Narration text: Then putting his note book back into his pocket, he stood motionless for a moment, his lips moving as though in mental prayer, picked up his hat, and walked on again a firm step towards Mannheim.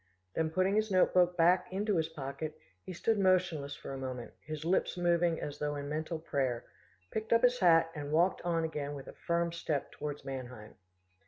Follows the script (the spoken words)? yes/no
no